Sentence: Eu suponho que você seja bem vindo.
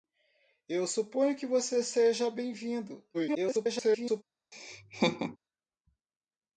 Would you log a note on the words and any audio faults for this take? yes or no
yes